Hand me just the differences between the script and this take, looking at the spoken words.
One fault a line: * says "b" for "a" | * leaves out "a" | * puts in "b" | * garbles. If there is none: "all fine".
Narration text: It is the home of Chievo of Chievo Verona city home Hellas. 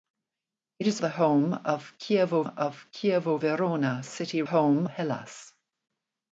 all fine